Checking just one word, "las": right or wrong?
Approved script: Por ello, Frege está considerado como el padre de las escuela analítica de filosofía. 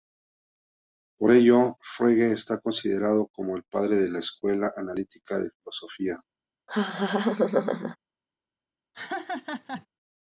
wrong